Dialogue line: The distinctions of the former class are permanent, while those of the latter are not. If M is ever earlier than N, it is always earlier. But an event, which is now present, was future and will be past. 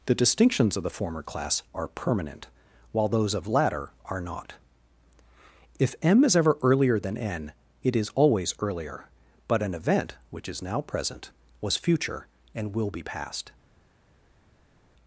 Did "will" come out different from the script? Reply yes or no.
no